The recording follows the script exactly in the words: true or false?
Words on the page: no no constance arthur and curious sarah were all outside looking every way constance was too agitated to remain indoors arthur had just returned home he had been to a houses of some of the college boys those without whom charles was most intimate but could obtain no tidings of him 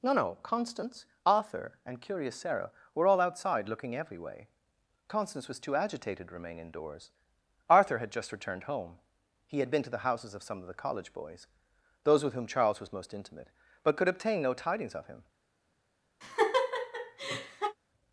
false